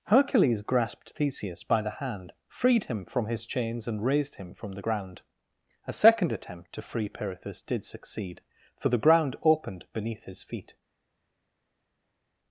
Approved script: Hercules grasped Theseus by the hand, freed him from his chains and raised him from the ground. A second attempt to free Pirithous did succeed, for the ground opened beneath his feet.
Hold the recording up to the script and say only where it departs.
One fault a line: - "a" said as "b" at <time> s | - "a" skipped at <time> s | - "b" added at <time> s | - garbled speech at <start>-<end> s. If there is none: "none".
none